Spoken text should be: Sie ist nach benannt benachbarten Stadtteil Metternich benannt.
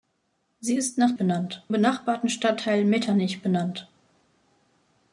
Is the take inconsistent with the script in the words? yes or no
no